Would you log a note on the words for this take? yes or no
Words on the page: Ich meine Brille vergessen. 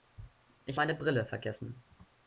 no